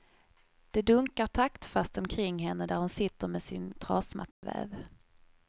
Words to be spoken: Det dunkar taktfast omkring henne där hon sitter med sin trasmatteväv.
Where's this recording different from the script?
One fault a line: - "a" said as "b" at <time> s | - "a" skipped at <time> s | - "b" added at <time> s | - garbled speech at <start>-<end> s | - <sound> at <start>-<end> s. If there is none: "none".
- dropout at 4.3-4.4 s